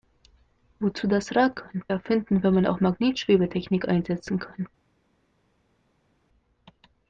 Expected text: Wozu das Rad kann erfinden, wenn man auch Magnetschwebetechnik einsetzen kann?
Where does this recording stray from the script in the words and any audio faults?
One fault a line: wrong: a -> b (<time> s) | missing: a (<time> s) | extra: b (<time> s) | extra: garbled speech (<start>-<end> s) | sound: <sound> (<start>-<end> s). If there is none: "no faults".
no faults